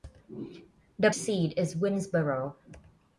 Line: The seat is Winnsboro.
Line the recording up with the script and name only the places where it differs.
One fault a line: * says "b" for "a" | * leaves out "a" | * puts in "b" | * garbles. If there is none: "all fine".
all fine